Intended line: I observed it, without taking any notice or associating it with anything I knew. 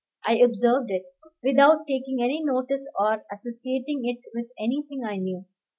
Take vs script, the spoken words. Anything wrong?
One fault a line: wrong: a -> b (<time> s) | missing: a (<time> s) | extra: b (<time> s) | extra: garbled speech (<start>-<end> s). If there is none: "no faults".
no faults